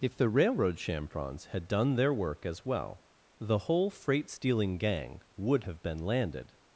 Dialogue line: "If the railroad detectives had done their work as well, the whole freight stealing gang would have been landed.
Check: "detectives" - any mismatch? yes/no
yes